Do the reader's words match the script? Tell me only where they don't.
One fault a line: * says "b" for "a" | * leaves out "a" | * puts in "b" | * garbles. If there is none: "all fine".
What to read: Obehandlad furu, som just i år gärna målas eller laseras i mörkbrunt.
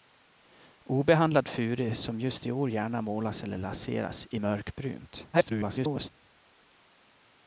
* garbles